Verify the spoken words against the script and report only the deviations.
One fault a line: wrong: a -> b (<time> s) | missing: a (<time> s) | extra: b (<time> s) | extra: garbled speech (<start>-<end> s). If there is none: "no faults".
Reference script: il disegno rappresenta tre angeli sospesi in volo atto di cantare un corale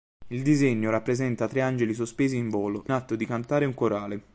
no faults